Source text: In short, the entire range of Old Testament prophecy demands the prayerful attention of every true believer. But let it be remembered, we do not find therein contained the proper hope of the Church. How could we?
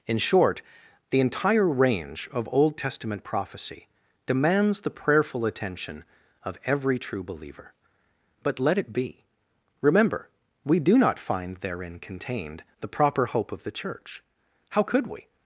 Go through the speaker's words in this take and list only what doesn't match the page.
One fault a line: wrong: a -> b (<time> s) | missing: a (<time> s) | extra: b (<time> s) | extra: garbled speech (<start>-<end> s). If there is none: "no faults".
wrong: remembered -> remember (9.8 s)